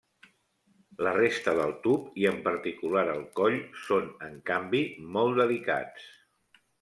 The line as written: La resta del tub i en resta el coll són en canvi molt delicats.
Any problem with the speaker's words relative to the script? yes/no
yes